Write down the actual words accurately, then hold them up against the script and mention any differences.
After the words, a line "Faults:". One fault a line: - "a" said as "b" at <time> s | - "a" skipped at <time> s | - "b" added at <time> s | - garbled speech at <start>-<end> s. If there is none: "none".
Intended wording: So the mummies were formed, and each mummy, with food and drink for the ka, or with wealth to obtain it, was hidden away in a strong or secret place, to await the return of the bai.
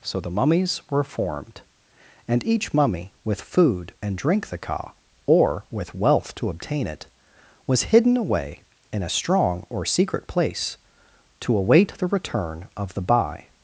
So the mummies were formed, and each mummy, with food and drink the ka, or with wealth to obtain it, was hidden away in a strong or secret place, to await the return of the bai.
Faults:
- "for" skipped at 4.5 s